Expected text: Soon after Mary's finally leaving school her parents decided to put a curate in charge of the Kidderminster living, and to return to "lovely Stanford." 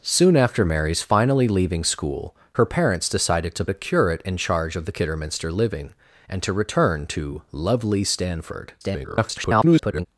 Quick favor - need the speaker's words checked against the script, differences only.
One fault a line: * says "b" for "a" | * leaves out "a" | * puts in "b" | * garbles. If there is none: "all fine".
* leaves out "put"
* garbles